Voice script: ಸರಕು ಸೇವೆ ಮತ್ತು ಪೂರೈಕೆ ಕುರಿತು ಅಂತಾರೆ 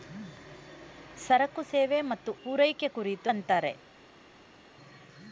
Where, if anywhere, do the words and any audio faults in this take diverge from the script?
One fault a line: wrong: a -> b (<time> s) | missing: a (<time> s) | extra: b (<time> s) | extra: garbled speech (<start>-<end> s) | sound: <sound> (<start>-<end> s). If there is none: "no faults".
no faults